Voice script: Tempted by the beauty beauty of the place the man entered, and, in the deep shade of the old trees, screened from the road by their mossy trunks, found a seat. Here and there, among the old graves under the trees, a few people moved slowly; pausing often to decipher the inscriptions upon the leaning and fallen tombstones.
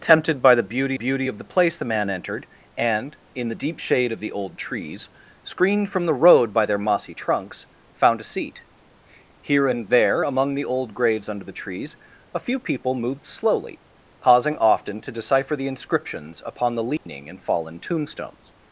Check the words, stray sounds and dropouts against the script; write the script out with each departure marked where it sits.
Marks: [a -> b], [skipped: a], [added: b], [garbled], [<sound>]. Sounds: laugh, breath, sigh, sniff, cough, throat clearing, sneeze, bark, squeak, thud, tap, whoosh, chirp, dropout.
Tempted by the beauty beauty of the place the man entered, and, in the deep shade of the old trees, screened from the road by their mossy trunks, found a seat. Here and there, among the old graves under the trees, a few people moved slowly; pausing often to decipher the inscriptions upon the leaning [dropout] and fallen tombstones.